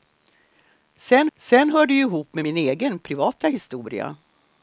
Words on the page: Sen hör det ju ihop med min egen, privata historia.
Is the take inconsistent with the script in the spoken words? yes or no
yes